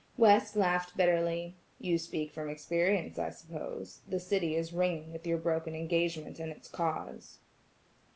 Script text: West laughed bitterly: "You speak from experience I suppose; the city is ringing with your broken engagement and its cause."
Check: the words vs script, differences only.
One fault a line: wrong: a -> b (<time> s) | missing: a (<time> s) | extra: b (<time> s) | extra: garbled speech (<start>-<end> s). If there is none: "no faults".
no faults